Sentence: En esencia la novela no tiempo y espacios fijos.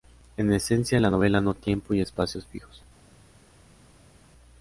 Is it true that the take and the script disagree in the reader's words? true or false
false